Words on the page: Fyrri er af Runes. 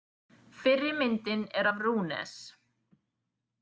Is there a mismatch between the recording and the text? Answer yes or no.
yes